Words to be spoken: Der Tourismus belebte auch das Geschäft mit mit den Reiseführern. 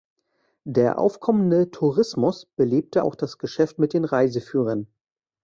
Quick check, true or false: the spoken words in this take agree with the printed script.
false